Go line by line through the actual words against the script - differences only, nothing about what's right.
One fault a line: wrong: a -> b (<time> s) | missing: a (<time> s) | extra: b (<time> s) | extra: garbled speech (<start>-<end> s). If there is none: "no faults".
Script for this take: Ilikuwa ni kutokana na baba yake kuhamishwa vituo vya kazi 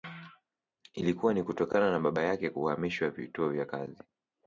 no faults